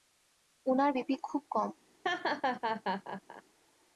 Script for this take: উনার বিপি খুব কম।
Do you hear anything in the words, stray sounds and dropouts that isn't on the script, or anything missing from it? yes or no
yes